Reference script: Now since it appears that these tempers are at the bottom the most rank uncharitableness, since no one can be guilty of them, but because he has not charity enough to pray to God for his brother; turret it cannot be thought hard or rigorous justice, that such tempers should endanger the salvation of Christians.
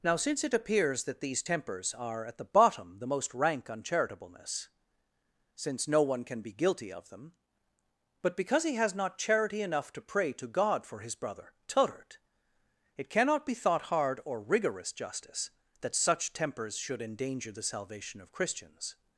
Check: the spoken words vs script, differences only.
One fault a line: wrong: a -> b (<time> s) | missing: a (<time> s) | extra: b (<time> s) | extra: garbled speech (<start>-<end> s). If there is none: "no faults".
no faults